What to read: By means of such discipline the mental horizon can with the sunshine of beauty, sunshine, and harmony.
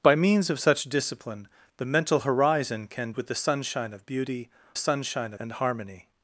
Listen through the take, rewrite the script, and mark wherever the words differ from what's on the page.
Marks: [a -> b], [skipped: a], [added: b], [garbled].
By means of such discipline the mental horizon can with the sunshine of beauty, sunshine, and harmony.